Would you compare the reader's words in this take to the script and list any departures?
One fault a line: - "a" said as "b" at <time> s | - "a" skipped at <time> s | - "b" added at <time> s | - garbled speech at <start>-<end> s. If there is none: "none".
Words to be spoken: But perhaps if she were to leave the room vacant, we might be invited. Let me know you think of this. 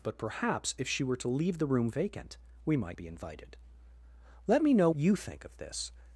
none